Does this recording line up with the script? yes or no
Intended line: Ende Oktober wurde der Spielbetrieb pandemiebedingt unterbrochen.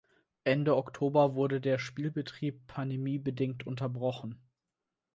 yes